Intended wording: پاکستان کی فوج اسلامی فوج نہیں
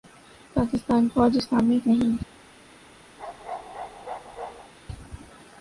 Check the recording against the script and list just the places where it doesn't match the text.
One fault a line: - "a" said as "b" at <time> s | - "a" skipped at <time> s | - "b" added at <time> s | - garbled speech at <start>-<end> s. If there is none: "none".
- "کی" skipped at 1.1 s
- "فوج" skipped at 1.8 s